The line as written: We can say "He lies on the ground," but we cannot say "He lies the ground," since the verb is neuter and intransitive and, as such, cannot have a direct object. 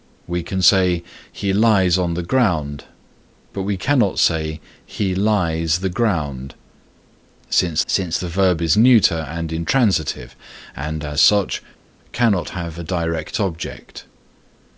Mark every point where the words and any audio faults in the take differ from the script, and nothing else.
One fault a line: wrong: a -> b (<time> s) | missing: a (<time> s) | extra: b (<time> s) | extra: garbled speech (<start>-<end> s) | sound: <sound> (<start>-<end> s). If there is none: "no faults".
extra: since (7.9 s)